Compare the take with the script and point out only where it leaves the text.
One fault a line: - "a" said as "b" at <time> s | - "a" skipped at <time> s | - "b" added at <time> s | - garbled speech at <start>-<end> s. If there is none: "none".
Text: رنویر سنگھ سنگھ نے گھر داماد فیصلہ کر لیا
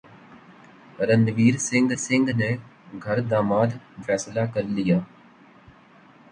none